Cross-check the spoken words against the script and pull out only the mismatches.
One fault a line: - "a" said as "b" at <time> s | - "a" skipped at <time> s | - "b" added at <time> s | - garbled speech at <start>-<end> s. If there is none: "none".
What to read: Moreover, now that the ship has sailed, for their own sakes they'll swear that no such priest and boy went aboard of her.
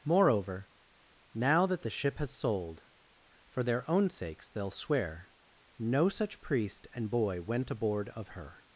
- "sailed" said as "sold" at 2.3 s
- "that" skipped at 5.3 s